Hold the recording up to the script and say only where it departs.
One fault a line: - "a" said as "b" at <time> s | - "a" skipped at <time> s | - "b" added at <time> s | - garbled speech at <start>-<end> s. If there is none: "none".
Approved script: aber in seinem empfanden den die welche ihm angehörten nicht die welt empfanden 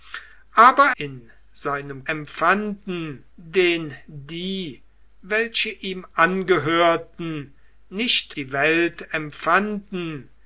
none